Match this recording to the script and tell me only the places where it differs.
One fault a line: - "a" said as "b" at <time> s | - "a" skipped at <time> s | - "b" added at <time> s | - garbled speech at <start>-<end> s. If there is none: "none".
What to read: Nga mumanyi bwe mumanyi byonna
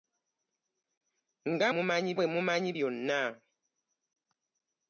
none